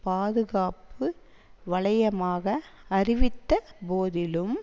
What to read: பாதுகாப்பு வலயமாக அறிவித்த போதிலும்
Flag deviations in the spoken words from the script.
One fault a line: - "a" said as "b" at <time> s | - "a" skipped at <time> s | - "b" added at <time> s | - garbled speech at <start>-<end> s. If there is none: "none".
none